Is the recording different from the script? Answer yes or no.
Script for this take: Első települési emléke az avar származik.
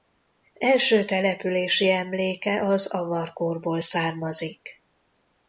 yes